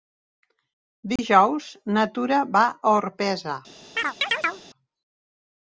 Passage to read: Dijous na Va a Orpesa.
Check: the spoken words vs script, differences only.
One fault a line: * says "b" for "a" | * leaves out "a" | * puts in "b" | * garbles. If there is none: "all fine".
* puts in "Tura"